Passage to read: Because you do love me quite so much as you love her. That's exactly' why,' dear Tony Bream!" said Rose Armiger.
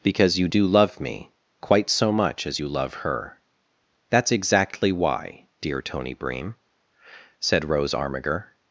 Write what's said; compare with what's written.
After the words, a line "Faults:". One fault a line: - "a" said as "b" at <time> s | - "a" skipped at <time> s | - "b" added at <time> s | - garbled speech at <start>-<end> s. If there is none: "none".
Because you do love me quite so much as you love her. That's exactly' why,' dear Tony Bream!" said Rose Armiger.
Faults:
none